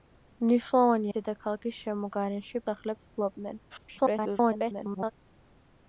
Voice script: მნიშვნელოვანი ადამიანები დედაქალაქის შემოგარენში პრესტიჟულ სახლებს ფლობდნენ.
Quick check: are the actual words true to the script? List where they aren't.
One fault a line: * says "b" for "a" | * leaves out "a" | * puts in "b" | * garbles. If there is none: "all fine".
* leaves out "ადამიანები"
* leaves out "პრესტიჟულ"
* garbles